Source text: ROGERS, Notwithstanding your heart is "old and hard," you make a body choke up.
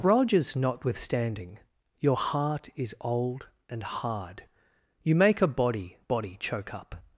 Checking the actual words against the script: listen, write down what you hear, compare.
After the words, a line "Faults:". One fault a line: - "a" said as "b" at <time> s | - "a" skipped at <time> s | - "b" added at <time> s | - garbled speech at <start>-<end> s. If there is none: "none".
ROGERS, Notwithstanding your heart is "old and hard," you make a body body choke up.
Faults:
- "body" added at 6.1 s